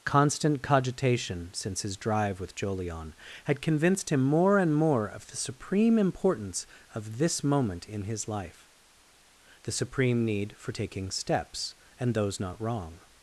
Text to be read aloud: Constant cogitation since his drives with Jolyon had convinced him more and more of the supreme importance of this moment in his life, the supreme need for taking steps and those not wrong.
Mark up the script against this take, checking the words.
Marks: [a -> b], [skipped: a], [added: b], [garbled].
Constant cogitation since his [drives -> drive] with Jolyon had convinced him more and more of the supreme importance of this moment in his life, the supreme need for taking steps and those not wrong.